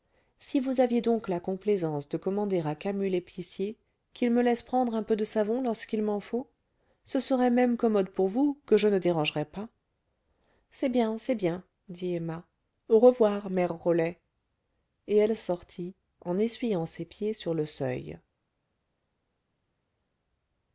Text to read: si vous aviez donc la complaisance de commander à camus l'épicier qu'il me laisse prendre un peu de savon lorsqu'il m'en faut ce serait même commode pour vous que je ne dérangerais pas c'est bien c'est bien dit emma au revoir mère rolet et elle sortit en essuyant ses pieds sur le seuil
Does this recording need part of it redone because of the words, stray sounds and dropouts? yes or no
no